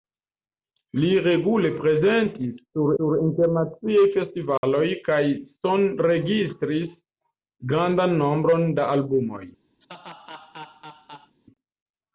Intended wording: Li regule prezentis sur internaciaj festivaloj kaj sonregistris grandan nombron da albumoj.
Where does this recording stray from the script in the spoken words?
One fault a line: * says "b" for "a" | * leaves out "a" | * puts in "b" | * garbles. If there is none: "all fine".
* puts in "sur"